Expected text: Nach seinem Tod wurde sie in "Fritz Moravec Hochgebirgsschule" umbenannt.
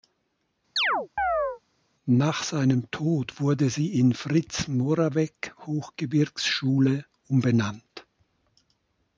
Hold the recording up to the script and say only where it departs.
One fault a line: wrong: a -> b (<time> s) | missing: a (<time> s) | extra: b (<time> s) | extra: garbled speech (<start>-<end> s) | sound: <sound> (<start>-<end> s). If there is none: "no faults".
sound: chirp (0.8-1.6 s)